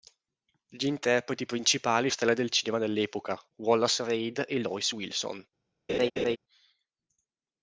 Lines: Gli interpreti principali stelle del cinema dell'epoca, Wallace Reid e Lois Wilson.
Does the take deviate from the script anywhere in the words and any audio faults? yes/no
yes